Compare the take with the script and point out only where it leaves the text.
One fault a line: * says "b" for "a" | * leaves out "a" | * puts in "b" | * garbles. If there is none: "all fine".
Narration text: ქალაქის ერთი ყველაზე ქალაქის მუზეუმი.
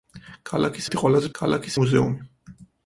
all fine